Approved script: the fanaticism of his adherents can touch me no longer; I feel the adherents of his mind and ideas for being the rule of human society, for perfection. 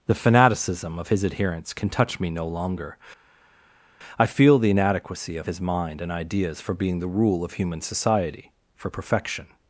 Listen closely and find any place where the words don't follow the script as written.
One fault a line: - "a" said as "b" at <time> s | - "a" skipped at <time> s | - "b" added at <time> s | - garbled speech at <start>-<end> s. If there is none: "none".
- "adherents" said as "inadequacy" at 4.7 s